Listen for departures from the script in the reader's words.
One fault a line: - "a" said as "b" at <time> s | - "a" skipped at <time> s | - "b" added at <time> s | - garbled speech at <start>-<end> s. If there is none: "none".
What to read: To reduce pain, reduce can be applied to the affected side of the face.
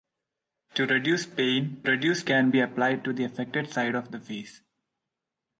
none